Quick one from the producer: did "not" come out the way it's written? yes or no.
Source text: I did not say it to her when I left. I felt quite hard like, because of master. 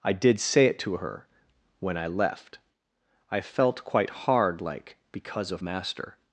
no